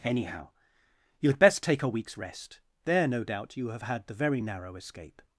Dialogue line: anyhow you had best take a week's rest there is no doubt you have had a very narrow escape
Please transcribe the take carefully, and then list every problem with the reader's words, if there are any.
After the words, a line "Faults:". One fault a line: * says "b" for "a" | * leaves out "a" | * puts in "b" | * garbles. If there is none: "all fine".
anyhow you had best take a week's rest there no doubt you have had the very narrow escape
Faults:
* leaves out "is"
* says "the" for "a"